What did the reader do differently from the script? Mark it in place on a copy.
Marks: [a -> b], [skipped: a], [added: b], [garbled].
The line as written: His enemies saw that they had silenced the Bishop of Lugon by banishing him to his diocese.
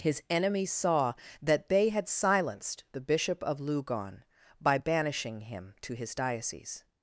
His enemies saw that they had silenced the Bishop of Lugon by banishing him to his diocese.